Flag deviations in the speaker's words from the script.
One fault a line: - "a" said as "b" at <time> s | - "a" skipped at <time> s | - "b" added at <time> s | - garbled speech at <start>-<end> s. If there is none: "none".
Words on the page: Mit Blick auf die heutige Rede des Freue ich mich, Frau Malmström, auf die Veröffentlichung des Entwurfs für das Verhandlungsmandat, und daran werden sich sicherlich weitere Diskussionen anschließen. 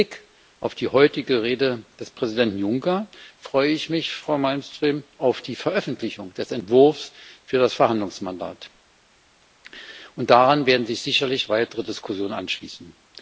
- "Präsidenten Juncker" added at 2.1 s